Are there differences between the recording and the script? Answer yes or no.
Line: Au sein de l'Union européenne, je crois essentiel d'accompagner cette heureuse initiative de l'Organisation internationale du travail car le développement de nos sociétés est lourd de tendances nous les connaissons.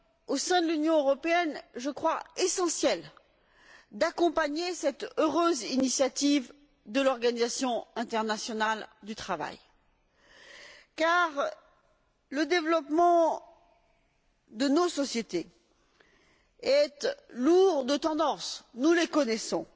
no